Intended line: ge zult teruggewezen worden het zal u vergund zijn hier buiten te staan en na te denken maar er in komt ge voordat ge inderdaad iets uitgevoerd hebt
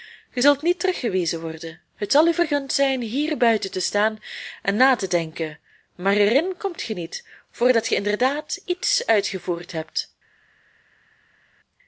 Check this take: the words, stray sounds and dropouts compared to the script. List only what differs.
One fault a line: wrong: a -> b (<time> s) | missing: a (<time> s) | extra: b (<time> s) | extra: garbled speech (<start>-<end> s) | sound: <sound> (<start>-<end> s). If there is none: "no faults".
extra: niet (0.6 s)
extra: niet (6.9 s)